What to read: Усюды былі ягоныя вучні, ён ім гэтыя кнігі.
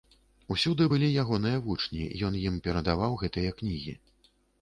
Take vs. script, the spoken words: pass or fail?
fail